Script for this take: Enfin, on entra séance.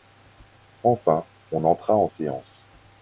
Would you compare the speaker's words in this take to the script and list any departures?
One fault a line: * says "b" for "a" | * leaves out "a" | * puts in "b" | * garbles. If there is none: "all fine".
* puts in "en"